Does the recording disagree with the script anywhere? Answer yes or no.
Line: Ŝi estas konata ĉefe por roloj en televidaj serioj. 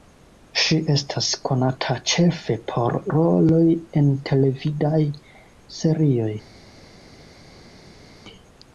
no